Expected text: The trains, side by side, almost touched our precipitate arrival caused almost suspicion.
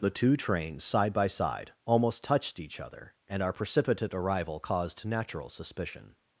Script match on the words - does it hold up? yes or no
no